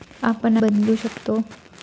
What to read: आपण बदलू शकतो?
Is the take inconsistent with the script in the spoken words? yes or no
no